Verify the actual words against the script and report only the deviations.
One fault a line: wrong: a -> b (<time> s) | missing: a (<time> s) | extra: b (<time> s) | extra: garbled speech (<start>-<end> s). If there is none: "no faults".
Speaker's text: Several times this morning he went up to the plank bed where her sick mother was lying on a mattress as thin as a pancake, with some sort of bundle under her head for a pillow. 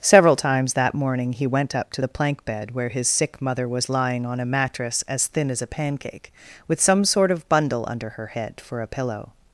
wrong: this -> that (0.7 s)
wrong: her -> his (2.9 s)